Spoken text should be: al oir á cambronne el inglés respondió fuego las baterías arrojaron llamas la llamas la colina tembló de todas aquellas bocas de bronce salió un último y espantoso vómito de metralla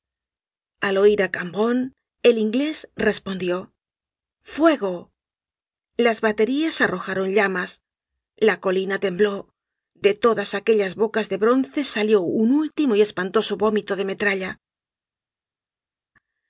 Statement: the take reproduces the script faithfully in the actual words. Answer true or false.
false